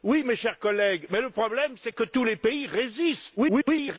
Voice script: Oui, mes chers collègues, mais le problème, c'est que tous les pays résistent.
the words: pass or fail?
fail